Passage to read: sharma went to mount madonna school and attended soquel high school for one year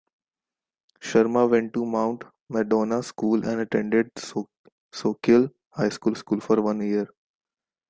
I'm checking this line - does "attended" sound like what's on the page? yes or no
yes